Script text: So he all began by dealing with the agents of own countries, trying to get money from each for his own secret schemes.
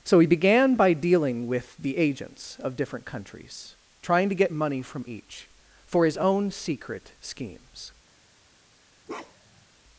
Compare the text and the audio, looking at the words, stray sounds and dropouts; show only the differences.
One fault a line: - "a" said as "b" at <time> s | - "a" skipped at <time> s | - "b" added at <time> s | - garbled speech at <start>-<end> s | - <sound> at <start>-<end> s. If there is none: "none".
- "all" skipped at 0.3 s
- "own" said as "different" at 2.8 s
- bark at 9.1-9.7 s